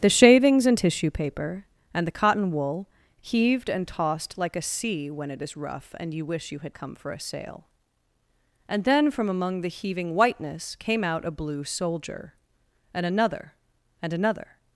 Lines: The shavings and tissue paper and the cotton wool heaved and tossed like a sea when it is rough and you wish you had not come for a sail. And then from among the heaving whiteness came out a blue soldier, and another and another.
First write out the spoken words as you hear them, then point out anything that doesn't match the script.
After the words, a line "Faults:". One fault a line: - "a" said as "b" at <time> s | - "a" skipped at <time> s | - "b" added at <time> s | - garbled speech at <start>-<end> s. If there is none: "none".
The shavings and tissue paper and the cotton wool heaved and tossed like a sea when it is rough and you wish you had come for a sail. And then from among the heaving whiteness came out a blue soldier, and another and another.
Faults:
- "not" skipped at 6.8 s